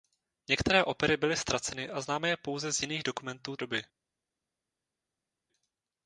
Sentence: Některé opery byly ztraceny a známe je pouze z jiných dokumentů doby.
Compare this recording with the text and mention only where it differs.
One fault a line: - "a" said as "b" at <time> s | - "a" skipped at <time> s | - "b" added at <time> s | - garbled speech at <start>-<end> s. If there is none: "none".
none